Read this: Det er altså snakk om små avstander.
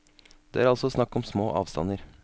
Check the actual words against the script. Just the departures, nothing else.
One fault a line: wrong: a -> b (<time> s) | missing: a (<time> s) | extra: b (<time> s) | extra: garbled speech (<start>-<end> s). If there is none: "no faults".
no faults